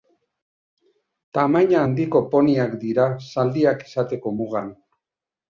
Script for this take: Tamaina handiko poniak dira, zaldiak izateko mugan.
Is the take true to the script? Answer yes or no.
yes